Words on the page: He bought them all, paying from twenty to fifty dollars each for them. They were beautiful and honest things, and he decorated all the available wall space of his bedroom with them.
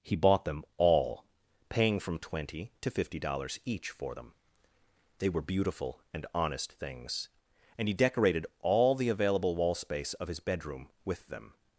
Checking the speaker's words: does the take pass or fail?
pass